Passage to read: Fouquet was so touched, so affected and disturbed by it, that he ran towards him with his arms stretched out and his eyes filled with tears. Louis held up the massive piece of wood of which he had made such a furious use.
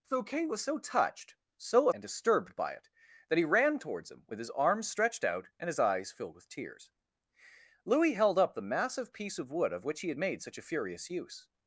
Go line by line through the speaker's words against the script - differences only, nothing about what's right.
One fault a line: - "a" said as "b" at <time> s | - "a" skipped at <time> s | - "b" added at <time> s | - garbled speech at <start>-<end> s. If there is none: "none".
- "affected" skipped at 1.9 s